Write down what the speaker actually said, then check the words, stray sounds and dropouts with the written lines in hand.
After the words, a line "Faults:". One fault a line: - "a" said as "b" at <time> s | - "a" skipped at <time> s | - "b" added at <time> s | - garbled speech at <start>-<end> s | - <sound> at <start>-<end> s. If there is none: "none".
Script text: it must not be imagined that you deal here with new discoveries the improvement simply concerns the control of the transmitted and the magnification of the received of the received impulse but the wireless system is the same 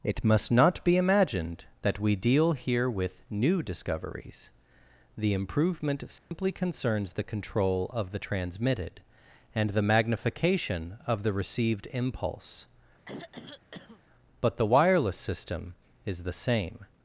it must not be imagined that we deal here with new discoveries the improvement simply concerns the control of the transmitted and the magnification of the received impulse but the wireless system is the same
Faults:
- "you" said as "we" at 2.0 s
- dropout at 6.2-6.3 s
- "of the received" skipped at 11.9 s
- throat clearing at 13.1-14.0 s